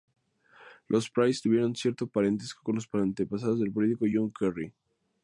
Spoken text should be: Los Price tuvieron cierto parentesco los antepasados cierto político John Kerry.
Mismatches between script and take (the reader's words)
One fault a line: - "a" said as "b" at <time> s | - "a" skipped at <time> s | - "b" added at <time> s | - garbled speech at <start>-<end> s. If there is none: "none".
- "con" added at 2.6 s
- "cierto" said as "del" at 3.6 s